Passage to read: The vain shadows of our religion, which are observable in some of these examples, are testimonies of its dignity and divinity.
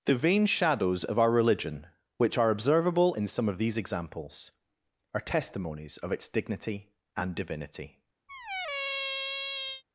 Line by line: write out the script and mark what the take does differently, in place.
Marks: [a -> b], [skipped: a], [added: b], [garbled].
The vain shadows of our religion, which are observable in some of these examples, are testimonies of its dignity and divinity.